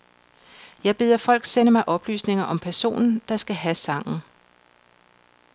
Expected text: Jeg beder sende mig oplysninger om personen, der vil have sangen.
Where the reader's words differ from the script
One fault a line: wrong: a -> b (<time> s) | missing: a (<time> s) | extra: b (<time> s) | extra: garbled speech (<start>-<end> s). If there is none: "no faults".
extra: folk (1.2 s)
wrong: vil -> skal (3.4 s)